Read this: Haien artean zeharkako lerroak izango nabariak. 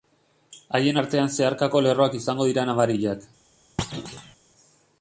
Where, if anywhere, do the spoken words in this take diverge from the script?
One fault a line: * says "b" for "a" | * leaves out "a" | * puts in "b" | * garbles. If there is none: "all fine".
* puts in "dira"